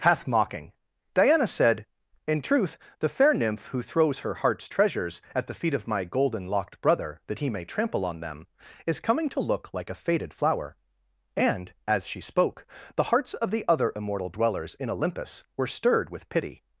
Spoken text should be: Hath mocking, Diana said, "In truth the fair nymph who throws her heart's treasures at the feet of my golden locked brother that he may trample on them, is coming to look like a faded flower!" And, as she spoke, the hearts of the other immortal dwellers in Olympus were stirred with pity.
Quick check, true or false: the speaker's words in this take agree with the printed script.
true